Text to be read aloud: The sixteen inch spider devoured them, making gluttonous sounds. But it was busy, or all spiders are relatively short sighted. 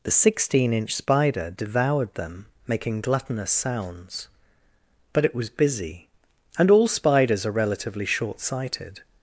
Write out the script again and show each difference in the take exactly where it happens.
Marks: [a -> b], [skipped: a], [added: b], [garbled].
The sixteen inch spider devoured them, making gluttonous sounds. But it was busy, [or -> and] all spiders are relatively short sighted.